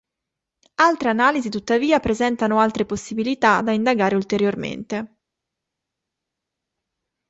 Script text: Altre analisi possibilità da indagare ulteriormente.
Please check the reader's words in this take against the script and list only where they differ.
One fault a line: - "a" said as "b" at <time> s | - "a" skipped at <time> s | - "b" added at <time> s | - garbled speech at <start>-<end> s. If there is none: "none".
- "tuttavia presentano altre" added at 1.5 s